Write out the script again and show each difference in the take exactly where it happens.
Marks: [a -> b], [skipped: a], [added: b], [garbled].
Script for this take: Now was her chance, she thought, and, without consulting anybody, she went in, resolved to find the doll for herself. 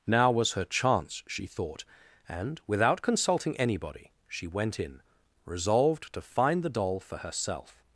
Now was her chance, she thought, and, without consulting anybody, she went in, resolved to find the doll for herself.